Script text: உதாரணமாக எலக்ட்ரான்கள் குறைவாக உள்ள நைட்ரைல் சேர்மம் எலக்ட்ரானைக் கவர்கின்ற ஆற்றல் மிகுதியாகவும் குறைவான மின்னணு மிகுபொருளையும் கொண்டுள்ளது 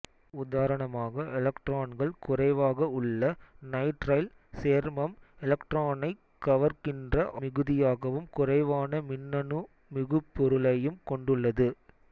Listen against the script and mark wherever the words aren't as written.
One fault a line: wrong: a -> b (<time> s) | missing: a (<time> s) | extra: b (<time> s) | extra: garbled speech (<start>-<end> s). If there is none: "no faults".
missing: ஆற்றல் (7.2 s)